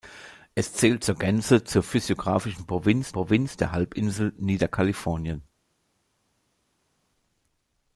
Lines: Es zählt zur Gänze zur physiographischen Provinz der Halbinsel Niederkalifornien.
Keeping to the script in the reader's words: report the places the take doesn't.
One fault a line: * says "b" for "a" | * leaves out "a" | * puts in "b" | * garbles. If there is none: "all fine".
* puts in "Provinz"